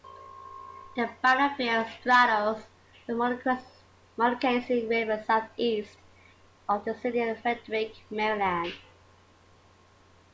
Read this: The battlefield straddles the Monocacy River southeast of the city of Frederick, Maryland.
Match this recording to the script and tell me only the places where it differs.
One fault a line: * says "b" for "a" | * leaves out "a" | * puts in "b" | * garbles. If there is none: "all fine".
all fine